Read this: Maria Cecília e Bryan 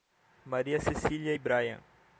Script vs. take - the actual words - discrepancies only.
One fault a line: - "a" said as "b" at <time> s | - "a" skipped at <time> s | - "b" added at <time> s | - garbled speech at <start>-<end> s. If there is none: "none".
none